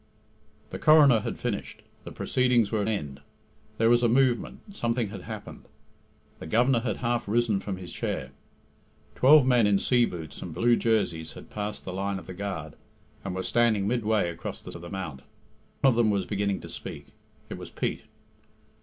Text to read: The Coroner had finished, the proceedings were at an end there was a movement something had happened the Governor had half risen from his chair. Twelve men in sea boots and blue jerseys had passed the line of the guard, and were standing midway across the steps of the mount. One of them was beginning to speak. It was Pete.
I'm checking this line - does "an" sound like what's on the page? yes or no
no